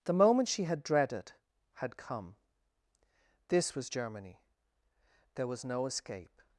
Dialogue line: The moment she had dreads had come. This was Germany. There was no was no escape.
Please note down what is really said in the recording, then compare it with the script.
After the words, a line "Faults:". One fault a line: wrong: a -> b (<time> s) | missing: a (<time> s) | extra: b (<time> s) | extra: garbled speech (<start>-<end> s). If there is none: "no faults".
The moment she had dreaded had come. This was Germany. There was no escape.
Faults:
wrong: dreads -> dreaded (0.8 s)
missing: was no (5.9 s)